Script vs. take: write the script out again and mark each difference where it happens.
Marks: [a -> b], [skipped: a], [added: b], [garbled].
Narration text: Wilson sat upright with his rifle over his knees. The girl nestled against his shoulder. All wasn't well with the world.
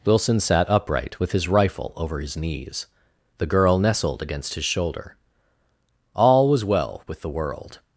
Wilson sat upright with his rifle over his knees. The girl nestled against his shoulder. All [wasn't -> was] well with the world.